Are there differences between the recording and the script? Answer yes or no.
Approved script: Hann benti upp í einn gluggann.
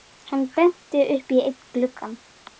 no